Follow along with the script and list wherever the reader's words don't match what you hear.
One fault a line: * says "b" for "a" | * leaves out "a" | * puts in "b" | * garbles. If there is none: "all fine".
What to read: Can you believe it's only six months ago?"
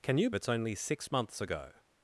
* leaves out "believe"